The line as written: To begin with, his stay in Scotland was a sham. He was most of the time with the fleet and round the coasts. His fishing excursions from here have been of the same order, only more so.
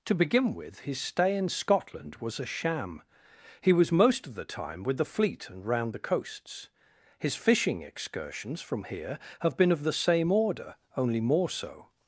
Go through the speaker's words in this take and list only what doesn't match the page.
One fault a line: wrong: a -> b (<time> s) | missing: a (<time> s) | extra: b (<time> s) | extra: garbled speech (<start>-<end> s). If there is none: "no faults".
no faults